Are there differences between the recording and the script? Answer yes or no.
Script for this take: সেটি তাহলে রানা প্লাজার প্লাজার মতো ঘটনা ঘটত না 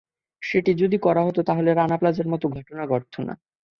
yes